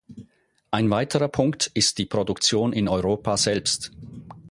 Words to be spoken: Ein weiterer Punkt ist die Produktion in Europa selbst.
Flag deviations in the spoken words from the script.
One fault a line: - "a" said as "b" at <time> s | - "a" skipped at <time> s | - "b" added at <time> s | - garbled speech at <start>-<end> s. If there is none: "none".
none